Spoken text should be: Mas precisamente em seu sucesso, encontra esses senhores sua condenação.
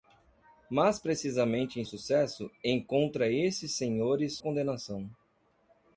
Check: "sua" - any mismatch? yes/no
yes